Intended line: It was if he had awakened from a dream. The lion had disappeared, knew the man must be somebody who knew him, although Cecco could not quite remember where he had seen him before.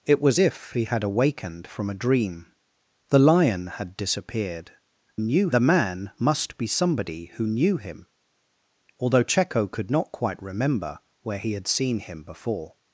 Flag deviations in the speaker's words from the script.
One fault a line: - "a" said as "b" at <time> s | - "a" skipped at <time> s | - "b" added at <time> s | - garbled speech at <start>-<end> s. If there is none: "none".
none